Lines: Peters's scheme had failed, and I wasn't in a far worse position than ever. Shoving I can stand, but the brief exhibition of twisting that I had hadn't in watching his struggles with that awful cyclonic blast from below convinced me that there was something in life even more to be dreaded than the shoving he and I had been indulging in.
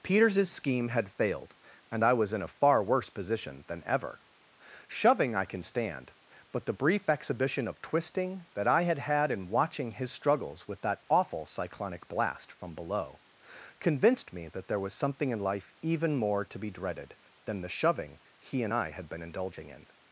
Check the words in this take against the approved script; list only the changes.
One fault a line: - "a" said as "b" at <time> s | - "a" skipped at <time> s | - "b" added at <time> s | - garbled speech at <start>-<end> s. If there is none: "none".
- "wasn't" said as "was" at 2.1 s
- "hadn't" said as "had" at 9.0 s